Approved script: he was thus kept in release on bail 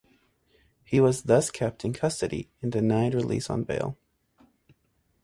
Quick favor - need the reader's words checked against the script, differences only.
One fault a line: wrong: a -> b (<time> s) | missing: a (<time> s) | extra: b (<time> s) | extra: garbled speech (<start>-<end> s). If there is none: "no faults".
extra: custody and denied (1.9 s)